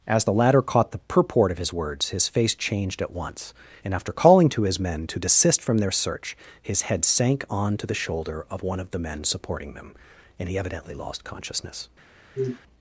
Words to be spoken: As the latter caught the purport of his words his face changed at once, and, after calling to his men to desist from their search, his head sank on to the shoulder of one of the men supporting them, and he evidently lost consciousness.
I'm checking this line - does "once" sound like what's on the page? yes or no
yes